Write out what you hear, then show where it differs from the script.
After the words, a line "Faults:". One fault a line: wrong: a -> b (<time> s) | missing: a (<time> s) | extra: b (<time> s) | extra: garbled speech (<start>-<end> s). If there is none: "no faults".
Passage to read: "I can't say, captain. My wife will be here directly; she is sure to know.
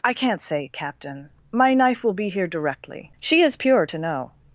"I can't say, captain. My knife will be here directly; she is pure to know.
Faults:
wrong: wife -> knife (1.8 s)
wrong: sure -> pure (3.5 s)